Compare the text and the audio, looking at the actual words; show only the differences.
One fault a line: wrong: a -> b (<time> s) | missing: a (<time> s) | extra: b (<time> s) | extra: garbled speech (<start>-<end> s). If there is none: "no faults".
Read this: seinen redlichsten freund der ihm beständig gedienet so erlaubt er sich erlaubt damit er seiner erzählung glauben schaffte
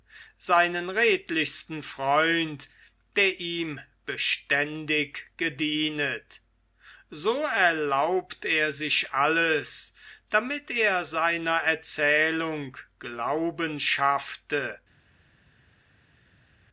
wrong: erlaubt -> alles (9.1 s)